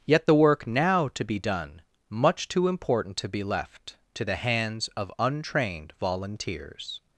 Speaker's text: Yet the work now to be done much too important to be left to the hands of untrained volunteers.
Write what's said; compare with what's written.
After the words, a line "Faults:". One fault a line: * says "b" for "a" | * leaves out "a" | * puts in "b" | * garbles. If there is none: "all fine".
Yet the work now to be done much too important to be left to the hands of untrained volunteers.
Faults:
all fine